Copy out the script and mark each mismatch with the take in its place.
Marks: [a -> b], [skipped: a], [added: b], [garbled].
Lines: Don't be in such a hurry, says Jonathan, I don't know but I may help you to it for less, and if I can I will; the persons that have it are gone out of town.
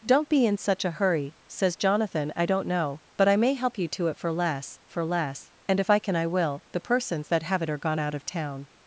Don't be in such a hurry, says Jonathan, I don't know but I may help you to it for less, [added: for less] and if I can I will; the persons that have it are gone out of town.